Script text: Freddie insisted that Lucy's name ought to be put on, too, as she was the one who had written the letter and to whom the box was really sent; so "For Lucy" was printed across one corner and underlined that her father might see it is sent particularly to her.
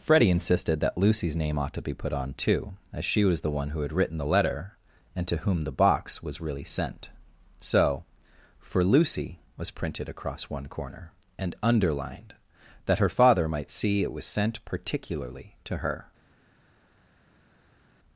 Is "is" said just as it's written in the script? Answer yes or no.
no